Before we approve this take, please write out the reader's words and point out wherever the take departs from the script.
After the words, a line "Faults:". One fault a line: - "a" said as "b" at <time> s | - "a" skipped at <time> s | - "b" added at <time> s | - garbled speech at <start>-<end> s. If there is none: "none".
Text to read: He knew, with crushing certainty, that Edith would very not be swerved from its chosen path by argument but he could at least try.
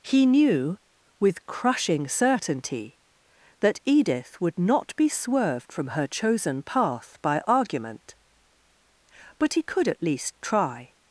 He knew, with crushing certainty, that Edith would not be swerved from her chosen path by argument but he could at least try.
Faults:
- "very" skipped at 4.6 s
- "its" said as "her" at 5.9 s